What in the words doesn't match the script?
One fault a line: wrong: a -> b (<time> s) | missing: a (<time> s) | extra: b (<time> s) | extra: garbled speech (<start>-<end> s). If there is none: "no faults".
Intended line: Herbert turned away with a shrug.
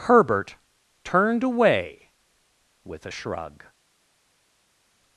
no faults